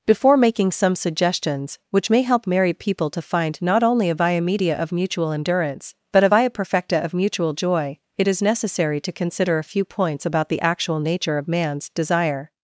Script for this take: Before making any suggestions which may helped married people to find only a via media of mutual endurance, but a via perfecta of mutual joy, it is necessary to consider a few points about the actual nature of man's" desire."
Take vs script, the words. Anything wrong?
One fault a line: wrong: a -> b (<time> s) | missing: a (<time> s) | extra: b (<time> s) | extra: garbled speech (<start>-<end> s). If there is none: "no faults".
wrong: any -> some (0.7 s)
wrong: helped -> help (2.2 s)
extra: not (3.6 s)